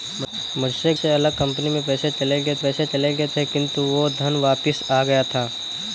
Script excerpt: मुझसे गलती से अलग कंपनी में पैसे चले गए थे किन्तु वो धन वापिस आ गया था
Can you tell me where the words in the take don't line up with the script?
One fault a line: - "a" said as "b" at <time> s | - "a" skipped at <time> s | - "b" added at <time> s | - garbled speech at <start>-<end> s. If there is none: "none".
- "गलती" skipped at 0.9 s
- "पैसे चले गए" added at 2.6 s